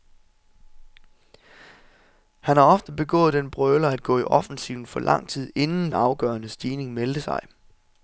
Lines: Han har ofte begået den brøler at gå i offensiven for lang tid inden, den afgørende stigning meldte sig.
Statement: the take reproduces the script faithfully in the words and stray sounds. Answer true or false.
false